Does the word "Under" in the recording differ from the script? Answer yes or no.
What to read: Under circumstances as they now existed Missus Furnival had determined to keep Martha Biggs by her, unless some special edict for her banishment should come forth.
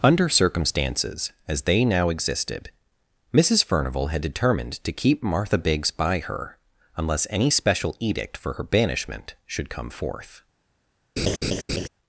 no